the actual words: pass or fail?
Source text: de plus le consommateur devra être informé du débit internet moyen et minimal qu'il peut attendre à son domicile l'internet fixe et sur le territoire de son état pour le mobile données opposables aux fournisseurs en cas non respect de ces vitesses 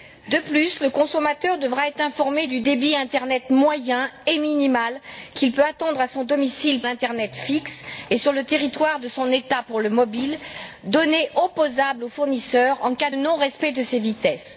pass